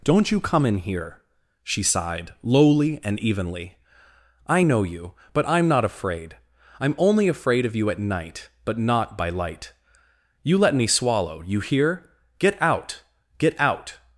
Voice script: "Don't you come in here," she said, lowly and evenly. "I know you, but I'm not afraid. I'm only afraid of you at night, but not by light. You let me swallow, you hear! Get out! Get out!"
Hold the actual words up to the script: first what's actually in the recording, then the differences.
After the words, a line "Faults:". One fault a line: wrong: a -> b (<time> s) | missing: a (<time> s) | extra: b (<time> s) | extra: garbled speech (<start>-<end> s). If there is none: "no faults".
"Don't you come in here," she sighed, lowly and evenly. "I know you, but I'm not afraid. I'm only afraid of you at night, but not by light. You let me swallow, you hear! Get out! Get out!"
Faults:
wrong: said -> sighed (1.8 s)